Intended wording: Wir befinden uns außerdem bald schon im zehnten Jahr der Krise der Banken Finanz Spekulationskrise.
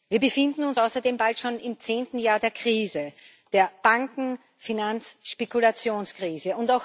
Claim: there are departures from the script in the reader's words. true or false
false